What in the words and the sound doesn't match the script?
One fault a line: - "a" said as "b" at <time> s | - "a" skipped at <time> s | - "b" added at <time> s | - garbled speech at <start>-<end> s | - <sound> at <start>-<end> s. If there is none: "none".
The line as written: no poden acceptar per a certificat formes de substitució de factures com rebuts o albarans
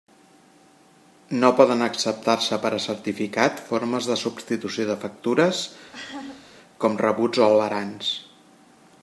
- "se" added at 2.5 s
- laugh at 5.9-6.5 s